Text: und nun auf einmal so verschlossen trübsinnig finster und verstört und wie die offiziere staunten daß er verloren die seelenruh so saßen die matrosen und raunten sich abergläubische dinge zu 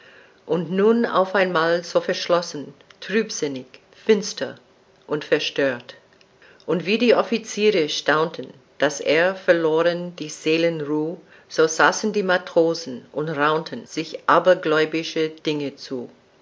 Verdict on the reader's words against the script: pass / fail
pass